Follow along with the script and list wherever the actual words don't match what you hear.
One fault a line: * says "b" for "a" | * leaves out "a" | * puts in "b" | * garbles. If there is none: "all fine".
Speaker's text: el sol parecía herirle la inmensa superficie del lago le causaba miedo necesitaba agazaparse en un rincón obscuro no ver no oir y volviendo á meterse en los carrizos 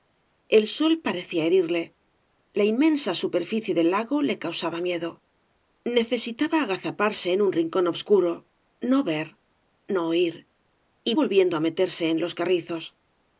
all fine